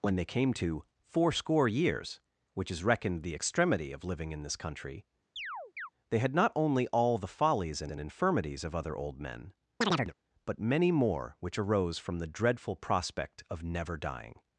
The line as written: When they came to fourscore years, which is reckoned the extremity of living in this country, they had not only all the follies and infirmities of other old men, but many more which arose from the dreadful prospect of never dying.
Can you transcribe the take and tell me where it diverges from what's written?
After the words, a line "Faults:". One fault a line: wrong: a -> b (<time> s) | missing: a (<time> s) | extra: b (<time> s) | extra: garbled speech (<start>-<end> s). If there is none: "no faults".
When they came to fourscore years, which is reckoned the extremity of living in this country, they had not only all the follies and and infirmities of other old men, but many more which arose from the dreadful prospect of never dying.
Faults:
extra: and (7.9 s)